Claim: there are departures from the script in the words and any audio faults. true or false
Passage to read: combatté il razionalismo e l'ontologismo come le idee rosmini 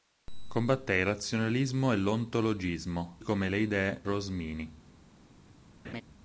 true